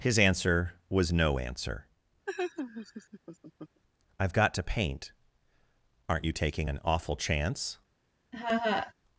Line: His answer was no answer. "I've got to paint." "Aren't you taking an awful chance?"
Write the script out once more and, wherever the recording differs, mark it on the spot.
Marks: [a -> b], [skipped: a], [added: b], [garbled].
His answer was no answer. "I've got to paint." "Aren't you taking an awful chance?"